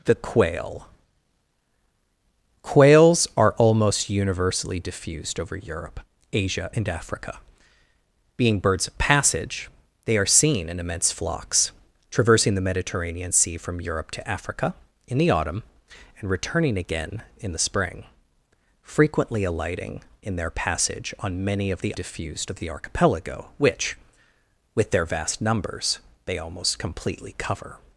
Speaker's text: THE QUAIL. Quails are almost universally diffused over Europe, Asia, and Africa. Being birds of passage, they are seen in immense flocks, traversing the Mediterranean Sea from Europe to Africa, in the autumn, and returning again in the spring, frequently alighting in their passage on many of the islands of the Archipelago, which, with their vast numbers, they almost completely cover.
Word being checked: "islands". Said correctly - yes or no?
no